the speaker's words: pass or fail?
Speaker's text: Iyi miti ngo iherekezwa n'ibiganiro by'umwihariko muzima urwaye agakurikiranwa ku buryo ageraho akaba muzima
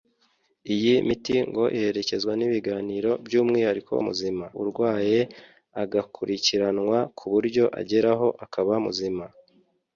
pass